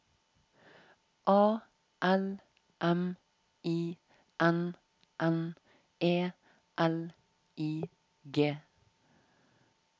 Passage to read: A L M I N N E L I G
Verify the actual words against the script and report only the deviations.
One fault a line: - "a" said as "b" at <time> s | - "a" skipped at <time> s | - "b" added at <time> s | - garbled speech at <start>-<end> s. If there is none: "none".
none